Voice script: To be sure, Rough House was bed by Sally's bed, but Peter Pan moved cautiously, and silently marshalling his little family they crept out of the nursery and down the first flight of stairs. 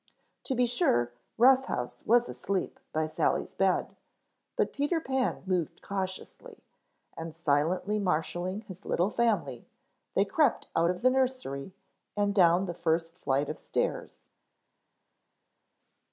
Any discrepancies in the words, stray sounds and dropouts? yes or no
yes